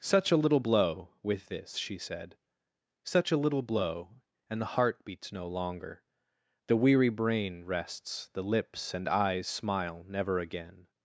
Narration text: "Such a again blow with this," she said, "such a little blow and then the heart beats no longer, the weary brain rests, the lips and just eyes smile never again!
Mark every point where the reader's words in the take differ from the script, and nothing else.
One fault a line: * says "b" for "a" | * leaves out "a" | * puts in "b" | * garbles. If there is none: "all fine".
* says "little" for "again"
* leaves out "then"
* leaves out "just"